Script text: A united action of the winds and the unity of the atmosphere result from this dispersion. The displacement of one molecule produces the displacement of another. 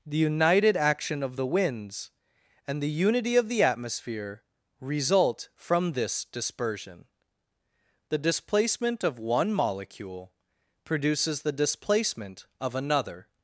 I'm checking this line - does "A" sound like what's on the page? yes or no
no